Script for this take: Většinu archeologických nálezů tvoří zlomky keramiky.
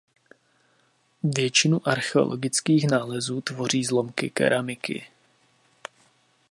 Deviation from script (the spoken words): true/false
false